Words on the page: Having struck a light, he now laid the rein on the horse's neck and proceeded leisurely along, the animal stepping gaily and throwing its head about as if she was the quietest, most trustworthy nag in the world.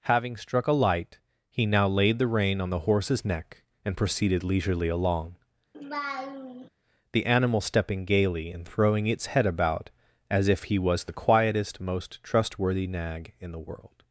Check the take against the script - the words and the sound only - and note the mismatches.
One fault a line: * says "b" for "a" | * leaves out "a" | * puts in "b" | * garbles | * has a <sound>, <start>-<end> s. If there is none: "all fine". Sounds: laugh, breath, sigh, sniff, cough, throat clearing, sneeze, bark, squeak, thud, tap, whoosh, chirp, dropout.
* has a laugh, 5.7-6.7 s
* says "he" for "she"